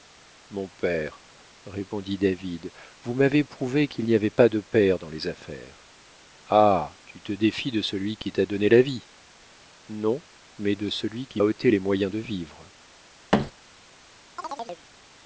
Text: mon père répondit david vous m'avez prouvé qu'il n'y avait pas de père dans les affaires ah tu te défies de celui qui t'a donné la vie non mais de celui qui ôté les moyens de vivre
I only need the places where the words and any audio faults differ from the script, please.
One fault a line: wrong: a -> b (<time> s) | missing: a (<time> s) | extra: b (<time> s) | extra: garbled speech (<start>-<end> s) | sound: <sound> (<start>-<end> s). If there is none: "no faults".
sound: thud (13.3-13.5 s)
sound: chirp (14.4-14.9 s)